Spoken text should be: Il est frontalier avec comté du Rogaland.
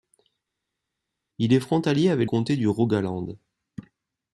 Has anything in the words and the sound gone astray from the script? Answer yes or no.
no